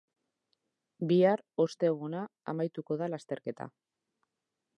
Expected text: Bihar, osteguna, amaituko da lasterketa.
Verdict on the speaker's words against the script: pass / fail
pass